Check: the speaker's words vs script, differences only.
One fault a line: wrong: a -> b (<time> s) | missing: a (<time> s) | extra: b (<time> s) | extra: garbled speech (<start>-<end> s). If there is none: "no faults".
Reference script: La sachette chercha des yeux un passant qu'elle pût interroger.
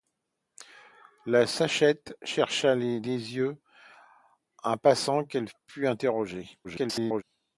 extra: garbled speech (6.6-7.2 s)